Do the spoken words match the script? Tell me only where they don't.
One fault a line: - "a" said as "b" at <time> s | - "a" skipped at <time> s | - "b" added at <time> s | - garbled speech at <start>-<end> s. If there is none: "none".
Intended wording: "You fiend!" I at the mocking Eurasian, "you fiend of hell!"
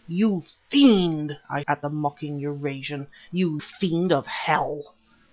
none